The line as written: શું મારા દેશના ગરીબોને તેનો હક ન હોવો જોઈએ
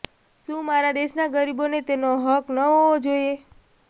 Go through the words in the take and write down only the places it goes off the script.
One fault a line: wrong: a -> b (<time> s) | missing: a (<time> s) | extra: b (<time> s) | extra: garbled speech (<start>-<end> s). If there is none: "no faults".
no faults